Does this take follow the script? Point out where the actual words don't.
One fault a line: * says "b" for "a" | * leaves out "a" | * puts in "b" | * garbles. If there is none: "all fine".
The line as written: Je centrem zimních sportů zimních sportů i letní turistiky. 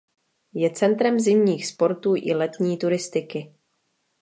* leaves out "zimních sportů"